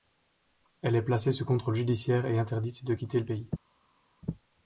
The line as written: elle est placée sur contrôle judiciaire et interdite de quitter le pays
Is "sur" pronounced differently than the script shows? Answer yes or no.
yes